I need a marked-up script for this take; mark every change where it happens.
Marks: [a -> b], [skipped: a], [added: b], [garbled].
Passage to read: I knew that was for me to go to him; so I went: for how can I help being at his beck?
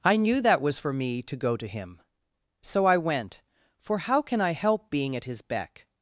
I knew that was for me to go to him; so I went: for how can I help being at his beck?